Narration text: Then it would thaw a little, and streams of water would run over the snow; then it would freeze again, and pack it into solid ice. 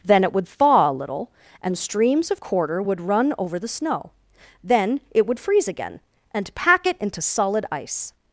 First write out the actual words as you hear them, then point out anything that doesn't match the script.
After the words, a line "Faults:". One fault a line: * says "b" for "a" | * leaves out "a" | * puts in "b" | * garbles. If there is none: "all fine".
Then it would thaw a little, and streams of quarter would run over the snow; then it would freeze again, and pack it into solid ice.
Faults:
* says "quarter" for "water"